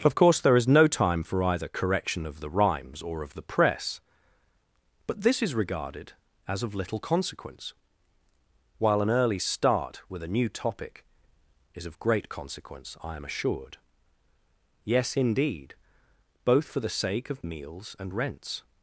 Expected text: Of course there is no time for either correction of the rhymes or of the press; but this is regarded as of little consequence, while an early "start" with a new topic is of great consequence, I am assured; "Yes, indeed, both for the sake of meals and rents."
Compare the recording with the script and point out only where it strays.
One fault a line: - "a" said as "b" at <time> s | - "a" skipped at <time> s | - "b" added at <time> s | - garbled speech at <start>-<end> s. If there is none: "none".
none